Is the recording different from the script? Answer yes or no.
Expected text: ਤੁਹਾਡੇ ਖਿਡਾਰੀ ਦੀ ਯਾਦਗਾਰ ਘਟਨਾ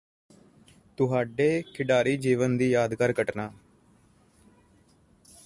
yes